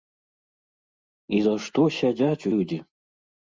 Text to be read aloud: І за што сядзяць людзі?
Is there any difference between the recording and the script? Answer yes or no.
no